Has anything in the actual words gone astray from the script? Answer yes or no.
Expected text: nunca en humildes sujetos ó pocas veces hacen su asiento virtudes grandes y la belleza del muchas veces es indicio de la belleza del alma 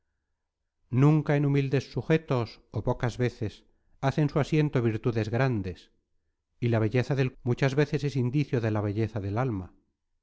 no